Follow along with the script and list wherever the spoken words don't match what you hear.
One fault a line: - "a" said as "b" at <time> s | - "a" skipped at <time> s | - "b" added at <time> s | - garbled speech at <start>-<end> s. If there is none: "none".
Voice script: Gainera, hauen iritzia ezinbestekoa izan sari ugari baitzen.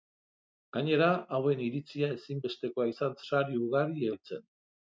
none